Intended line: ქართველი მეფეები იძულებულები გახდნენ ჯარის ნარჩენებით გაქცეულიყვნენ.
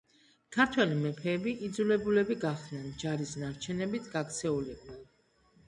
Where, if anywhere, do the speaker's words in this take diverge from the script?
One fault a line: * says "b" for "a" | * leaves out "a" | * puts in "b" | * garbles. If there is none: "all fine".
all fine